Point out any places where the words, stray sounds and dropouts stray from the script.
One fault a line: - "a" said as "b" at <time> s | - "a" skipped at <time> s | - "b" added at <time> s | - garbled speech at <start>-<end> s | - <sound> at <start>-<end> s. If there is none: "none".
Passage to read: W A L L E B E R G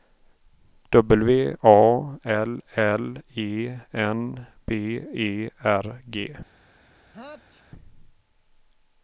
- "N" added at 3.9 s
- sneeze at 7.1-7.7 s